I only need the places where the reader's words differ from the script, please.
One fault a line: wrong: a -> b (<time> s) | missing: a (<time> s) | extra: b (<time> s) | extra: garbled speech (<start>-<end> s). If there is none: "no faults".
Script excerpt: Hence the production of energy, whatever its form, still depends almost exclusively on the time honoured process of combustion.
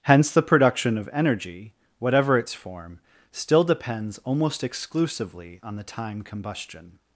missing: honoured process of (6.2 s)